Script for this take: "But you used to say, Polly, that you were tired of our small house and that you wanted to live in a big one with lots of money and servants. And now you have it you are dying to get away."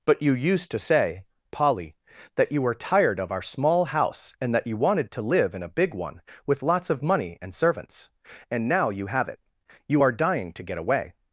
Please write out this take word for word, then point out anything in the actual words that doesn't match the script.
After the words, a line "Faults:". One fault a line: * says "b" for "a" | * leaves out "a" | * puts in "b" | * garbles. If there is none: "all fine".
"But you used to say, Polly, that you were tired of our small house and that you wanted to live in a big one with lots of money and servants. And now you have it you are dying to get away."
Faults:
all fine